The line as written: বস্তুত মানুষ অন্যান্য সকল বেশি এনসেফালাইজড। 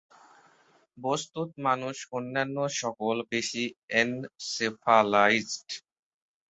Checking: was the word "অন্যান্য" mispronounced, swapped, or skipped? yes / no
no